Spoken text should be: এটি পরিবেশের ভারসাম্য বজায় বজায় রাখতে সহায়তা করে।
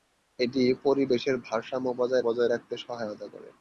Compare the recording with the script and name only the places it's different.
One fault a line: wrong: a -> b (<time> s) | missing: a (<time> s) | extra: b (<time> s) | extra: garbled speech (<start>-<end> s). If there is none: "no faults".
no faults